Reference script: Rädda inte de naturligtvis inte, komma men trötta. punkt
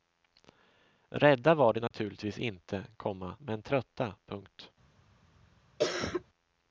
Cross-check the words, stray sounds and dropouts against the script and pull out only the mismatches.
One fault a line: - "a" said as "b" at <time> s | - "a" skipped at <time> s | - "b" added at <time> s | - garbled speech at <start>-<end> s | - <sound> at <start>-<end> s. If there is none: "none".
- "inte" said as "var" at 1.6 s
- dropout at 1.9-1.9 s
- cough at 5.8-6.2 s